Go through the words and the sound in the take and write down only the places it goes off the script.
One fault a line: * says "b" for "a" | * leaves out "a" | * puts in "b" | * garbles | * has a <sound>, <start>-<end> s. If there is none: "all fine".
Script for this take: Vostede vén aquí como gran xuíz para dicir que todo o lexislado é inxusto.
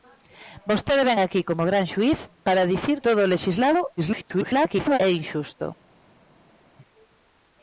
* leaves out "que"
* garbles